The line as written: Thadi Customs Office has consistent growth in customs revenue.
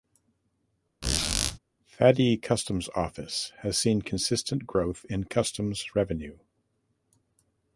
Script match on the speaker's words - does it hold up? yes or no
no